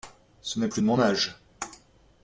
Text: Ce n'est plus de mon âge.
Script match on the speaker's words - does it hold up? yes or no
yes